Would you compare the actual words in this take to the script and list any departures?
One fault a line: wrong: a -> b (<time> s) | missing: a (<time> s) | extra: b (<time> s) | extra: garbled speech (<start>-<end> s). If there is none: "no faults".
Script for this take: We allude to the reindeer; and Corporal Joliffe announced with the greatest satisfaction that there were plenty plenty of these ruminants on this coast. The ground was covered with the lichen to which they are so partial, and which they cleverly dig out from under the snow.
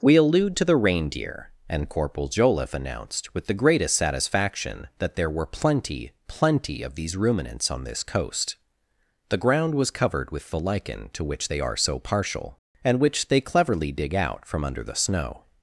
no faults